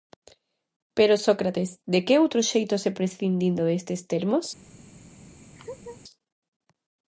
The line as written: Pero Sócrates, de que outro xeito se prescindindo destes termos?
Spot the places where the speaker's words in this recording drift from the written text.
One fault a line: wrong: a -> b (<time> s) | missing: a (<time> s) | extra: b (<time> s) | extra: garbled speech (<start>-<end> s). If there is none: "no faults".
no faults